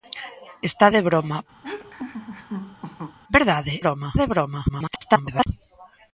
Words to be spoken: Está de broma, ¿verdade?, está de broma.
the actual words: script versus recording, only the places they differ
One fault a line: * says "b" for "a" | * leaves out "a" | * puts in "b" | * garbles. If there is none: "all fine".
* says "broma" for "está"
* garbles